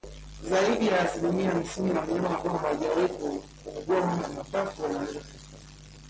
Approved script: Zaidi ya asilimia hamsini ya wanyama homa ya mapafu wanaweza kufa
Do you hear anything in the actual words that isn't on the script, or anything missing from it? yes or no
yes